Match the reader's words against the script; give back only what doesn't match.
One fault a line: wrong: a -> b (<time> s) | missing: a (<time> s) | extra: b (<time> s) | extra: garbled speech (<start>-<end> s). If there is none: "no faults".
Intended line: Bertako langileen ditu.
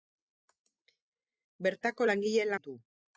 no faults